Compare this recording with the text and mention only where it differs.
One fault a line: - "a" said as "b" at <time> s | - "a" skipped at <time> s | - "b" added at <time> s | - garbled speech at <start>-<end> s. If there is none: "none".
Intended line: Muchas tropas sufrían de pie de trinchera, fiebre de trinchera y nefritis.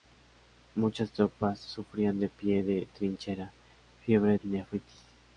- "de trinchera" skipped at 4.4 s